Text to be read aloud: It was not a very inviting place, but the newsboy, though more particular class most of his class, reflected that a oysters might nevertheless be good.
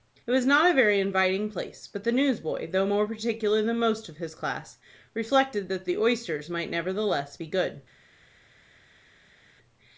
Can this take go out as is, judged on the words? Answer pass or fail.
fail